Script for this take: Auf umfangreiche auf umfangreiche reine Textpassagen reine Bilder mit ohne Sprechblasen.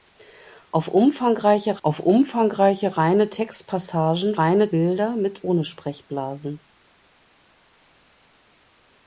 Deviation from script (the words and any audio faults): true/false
false